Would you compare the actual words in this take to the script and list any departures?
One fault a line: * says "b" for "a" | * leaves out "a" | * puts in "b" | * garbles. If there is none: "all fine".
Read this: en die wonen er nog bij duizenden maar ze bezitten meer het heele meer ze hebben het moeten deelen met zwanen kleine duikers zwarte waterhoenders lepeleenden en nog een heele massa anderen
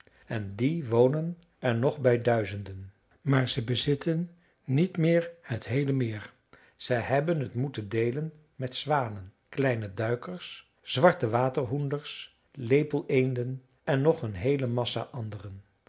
* puts in "niet"